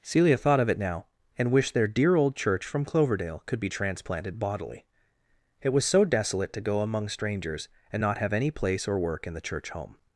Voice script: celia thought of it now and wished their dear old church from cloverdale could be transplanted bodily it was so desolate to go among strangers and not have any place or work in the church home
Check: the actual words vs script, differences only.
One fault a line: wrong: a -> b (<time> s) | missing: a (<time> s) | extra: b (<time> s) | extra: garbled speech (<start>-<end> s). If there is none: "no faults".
no faults